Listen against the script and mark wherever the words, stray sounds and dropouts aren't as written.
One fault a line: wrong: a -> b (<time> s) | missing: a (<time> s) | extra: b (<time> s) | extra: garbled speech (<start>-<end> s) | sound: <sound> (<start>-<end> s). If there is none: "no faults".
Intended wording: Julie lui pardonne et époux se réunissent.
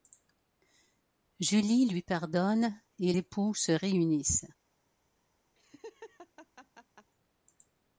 sound: laugh (5.5-7.1 s)